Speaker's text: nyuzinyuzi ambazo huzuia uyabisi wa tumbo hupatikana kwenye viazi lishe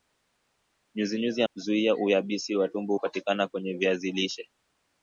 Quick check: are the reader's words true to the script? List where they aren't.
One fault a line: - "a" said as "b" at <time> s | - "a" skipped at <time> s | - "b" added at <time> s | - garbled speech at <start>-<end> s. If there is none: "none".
- "ambazo" skipped at 1.4 s